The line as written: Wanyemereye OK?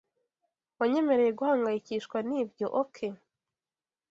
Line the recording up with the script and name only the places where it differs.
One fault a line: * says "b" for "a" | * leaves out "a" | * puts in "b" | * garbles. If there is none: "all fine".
* puts in "guhangayikishwa nibyo"